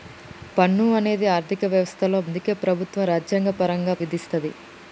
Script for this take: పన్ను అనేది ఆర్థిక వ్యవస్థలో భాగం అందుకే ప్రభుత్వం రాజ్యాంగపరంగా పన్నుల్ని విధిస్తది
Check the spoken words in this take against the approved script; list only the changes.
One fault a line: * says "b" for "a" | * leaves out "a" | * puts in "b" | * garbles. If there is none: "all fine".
* leaves out "భాగం"
* leaves out "పన్నుల్ని"